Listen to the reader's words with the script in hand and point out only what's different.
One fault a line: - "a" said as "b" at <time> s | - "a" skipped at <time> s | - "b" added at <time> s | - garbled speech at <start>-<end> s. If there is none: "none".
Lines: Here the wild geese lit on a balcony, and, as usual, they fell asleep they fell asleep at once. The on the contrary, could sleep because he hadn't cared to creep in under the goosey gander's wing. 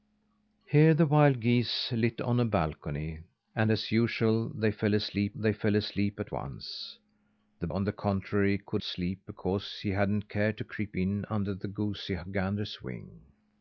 none